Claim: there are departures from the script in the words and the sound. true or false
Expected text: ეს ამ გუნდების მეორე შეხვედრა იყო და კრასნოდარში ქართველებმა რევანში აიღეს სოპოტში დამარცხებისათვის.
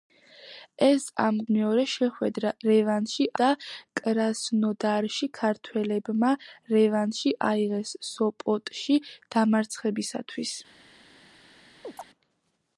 true